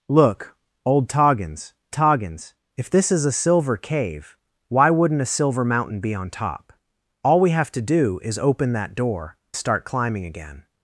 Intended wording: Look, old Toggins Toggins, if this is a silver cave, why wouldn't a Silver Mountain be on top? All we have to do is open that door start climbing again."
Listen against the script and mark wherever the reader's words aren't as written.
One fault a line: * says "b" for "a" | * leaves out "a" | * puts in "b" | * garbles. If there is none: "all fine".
all fine